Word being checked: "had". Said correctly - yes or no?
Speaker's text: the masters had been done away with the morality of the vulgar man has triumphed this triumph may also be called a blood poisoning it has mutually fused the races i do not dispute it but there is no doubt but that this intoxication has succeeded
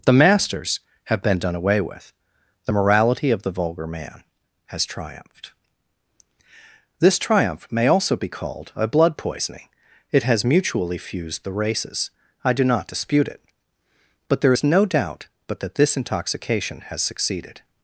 no